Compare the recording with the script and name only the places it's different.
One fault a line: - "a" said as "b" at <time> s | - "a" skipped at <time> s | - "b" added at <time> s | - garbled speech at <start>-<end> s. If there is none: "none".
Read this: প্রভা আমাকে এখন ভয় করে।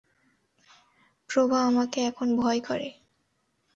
none